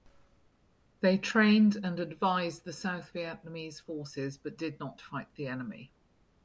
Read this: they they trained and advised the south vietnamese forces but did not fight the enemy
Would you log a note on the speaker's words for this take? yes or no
yes